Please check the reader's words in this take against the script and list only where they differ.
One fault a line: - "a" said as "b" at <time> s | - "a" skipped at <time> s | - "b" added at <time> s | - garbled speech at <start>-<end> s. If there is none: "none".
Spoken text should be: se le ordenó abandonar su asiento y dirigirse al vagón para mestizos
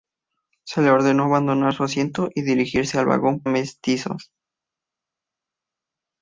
- "para" skipped at 3.4 s